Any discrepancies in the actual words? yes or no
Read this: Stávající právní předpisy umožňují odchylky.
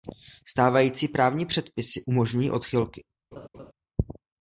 no